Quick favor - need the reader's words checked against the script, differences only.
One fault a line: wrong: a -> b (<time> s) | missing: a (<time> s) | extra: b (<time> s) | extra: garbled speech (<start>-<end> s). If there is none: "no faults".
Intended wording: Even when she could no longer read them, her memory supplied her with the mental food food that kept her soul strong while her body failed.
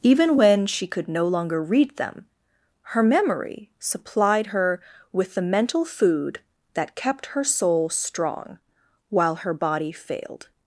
missing: food (6.4 s)